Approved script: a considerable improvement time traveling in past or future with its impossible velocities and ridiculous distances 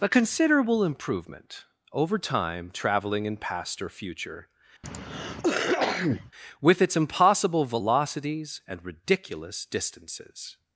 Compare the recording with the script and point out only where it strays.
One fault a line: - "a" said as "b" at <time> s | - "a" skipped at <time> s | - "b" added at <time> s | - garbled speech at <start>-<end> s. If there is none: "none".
- "over" added at 1.9 s